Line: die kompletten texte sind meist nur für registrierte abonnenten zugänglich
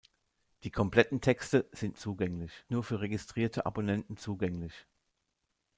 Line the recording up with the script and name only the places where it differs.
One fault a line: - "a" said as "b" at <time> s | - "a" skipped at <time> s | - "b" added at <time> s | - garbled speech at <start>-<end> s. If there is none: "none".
- "meist" said as "zugänglich" at 2.0 s